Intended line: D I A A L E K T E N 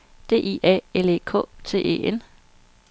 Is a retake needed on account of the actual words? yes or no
yes